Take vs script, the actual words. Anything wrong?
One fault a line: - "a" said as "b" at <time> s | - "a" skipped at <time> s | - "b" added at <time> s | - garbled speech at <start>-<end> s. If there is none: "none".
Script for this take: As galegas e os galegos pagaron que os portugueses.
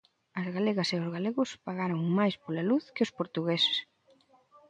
- "máis pola luz" added at 2.2 s